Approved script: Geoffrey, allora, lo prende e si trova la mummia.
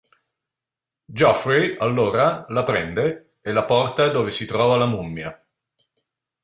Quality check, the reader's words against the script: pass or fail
fail